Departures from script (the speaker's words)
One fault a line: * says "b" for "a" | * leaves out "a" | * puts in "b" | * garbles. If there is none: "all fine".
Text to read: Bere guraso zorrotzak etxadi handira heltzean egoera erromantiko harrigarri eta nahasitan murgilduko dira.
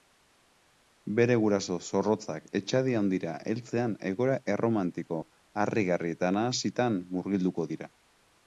all fine